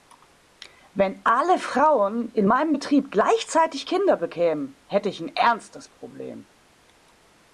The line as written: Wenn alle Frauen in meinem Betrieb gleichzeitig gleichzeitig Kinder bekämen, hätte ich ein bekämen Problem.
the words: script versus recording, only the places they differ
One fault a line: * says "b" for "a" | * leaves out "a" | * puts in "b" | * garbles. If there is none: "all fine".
* leaves out "gleichzeitig"
* says "ernstes" for "bekämen"